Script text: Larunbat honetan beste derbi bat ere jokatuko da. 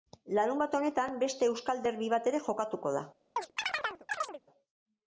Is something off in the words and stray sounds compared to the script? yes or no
yes